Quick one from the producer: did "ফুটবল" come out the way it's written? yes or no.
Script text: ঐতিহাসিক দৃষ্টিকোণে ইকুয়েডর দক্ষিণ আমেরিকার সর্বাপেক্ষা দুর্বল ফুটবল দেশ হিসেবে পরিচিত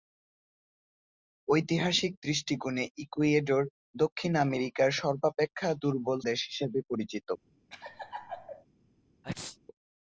no